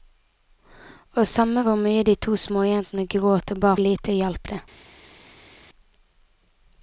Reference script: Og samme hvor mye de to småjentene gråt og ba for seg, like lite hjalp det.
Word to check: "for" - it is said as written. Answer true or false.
false